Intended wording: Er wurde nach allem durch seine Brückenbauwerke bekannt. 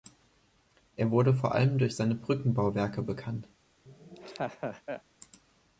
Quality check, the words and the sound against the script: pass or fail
fail